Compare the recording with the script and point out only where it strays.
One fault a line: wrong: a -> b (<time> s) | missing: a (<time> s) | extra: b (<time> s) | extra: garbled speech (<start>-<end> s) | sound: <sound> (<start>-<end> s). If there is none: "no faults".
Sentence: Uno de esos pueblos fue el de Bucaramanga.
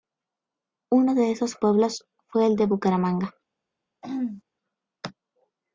sound: throat clearing (4.0-4.4 s)